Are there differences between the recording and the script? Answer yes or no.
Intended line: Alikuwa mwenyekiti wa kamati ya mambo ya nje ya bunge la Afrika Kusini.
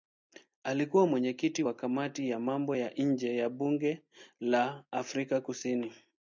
no